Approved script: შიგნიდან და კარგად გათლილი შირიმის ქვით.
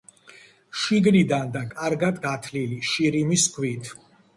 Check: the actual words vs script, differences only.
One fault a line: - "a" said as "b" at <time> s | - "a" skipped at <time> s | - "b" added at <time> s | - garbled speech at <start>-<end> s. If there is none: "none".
none